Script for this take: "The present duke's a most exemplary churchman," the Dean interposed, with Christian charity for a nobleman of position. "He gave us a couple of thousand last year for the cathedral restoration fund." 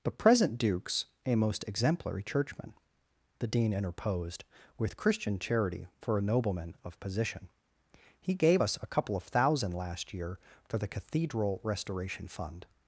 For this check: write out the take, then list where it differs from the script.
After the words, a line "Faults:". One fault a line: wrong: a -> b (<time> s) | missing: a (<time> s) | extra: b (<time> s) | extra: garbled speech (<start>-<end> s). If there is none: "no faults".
"The present duke's a most exemplary churchman," the Dean interposed, with Christian charity for a nobleman of position. "He gave us a couple of thousand last year for the cathedral restoration fund."
Faults:
no faults